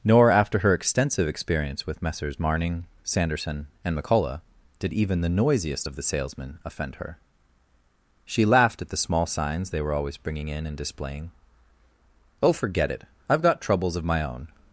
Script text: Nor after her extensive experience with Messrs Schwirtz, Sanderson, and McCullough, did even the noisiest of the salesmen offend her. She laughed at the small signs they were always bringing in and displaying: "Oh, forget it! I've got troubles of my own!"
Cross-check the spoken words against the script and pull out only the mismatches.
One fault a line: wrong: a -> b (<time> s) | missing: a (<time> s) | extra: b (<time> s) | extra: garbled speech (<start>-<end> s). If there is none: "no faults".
wrong: Schwirtz -> Marning (2.4 s)